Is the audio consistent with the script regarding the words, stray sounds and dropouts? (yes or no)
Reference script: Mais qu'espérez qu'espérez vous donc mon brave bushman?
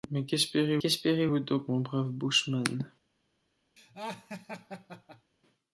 no